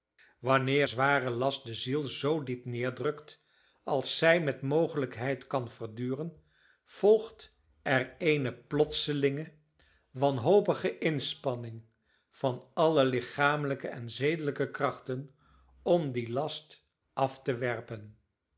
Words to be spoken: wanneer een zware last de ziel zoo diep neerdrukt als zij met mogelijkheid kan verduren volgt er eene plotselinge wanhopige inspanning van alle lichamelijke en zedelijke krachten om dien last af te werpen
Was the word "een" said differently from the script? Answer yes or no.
yes